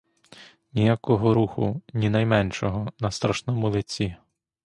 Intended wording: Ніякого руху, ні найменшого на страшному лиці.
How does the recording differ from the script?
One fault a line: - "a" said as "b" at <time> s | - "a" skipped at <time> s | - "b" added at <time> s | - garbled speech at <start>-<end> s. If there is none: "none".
none